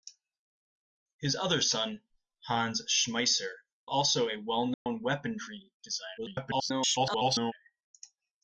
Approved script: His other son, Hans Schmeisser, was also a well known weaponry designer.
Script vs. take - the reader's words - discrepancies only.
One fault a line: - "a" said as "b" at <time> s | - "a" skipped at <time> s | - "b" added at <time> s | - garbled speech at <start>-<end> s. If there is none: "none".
- "was" skipped at 3.5 s
- garbled speech at 6.2-7.5 s